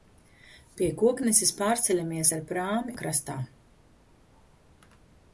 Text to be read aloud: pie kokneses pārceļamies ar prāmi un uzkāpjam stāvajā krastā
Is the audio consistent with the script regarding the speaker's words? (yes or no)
no